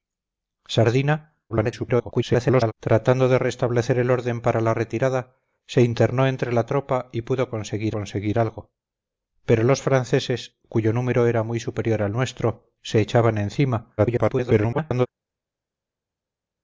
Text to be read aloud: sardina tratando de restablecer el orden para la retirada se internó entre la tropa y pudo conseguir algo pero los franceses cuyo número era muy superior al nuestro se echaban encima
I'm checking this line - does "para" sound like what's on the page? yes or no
yes